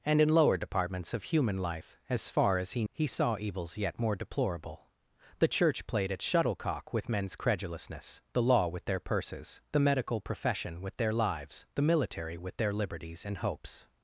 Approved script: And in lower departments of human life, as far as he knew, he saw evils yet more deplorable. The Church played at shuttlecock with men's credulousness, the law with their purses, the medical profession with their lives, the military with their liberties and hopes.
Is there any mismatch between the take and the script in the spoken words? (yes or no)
yes